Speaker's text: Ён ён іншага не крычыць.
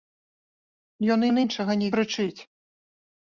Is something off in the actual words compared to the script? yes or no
no